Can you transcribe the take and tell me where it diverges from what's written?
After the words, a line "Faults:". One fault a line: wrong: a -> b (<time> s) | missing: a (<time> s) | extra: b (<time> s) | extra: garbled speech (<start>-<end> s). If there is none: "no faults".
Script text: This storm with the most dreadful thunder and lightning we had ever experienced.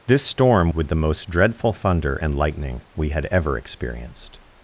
This storm with the most dreadful thunder and lightning we had ever experienced.
Faults:
no faults